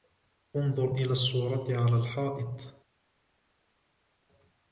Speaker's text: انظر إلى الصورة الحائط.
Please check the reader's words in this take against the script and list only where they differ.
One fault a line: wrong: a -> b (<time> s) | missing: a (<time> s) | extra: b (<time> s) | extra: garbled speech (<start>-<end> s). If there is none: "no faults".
extra: على (1.8 s)